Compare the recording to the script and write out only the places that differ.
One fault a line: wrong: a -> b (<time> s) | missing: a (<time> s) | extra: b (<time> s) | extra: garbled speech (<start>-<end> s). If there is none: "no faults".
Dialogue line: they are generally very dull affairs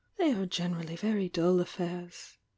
no faults